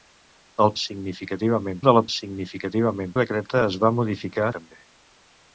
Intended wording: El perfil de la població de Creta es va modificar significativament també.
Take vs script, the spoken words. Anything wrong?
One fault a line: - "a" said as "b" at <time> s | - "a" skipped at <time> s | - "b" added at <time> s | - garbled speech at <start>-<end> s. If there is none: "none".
- "perfil" said as "significativament" at 0.8 s
- "població" said as "significativament" at 2.1 s
- "significativament" skipped at 4.5 s